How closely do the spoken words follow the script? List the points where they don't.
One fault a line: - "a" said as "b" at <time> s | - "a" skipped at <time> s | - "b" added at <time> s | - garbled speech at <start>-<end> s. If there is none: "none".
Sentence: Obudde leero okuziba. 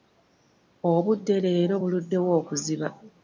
- "buluddewo" added at 1.8 s